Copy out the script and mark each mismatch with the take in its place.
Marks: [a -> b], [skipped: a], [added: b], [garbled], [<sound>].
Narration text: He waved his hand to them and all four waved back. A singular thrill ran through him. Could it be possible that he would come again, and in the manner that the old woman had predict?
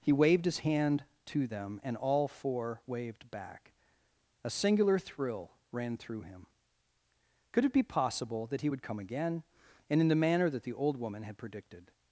He waved his hand to them and all four waved back. A singular thrill ran through him. Could it be possible that he would come again, and in the manner that the old woman had [predict? -> predicted]